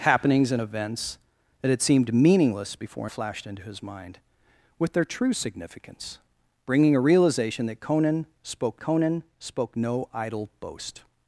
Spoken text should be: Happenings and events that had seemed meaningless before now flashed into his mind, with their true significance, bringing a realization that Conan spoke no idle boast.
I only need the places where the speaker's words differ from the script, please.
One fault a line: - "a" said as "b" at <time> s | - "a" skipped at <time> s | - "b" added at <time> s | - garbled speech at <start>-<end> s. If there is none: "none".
- "now" skipped at 3.1 s
- "Conan spoke" added at 8.8 s